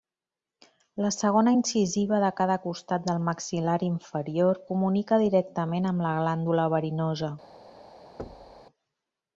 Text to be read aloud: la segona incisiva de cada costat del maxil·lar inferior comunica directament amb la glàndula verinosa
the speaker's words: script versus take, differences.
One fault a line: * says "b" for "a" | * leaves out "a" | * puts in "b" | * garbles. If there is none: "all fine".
all fine